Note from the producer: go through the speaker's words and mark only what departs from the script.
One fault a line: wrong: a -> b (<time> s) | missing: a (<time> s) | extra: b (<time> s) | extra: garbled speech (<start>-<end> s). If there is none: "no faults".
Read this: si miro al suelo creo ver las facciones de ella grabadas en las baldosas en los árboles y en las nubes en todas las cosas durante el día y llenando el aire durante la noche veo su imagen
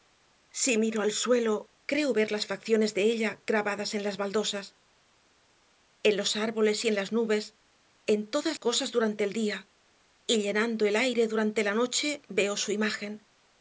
missing: las (8.6 s)